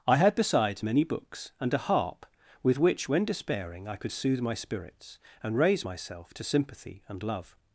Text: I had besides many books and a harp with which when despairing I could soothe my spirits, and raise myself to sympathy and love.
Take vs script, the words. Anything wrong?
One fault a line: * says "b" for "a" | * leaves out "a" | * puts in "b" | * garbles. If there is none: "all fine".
all fine